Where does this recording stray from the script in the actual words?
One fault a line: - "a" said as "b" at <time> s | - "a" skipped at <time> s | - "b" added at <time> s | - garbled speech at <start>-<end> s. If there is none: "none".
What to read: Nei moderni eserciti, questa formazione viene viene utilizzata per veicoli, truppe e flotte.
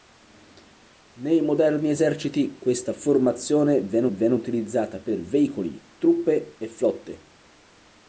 none